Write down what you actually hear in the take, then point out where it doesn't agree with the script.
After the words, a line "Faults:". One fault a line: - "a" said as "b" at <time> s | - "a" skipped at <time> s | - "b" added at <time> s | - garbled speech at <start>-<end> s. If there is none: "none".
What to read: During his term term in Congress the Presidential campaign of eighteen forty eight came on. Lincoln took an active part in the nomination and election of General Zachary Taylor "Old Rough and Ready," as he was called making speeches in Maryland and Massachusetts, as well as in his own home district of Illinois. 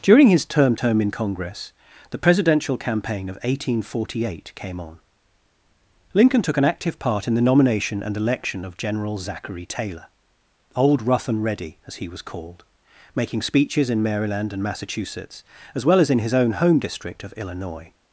During his term term in Congress the Presidential campaign of eighteen forty eight came on. Lincoln took an active part in the nomination and election of General Zachary Taylor "Old Rough and Ready," as he was called making speeches in Maryland and Massachusetts, as well as in his own home district of Illinois.
Faults:
none